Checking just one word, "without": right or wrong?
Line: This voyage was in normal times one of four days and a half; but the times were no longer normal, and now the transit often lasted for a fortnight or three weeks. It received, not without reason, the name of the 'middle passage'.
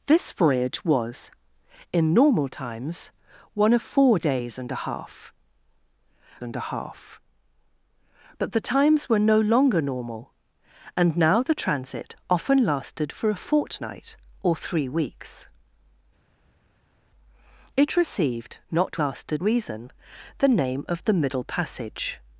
wrong